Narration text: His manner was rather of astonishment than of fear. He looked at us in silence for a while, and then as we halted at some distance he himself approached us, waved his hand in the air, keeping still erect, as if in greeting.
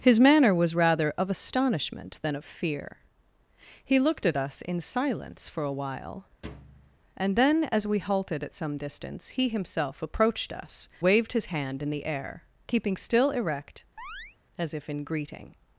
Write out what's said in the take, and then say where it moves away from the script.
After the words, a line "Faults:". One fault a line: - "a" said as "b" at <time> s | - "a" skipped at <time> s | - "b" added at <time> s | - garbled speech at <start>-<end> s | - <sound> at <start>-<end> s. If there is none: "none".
His manner was rather of astonishment than of fear. He looked at us in silence for a while, and then as we halted at some distance he himself approached us, waved his hand in the air, keeping still erect, as if in greeting.
Faults:
- thud at 6.4-7.0 s
- chirp at 14.0-14.4 s